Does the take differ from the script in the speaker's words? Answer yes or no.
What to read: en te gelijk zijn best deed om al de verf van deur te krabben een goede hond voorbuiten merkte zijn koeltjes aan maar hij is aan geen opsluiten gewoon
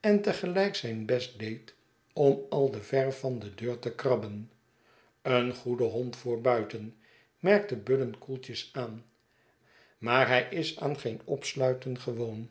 yes